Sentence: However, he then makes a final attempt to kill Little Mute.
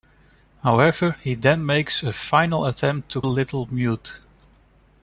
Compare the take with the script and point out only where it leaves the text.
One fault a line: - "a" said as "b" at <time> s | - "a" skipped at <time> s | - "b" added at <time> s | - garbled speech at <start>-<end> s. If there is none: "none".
- "kill" skipped at 3.2 s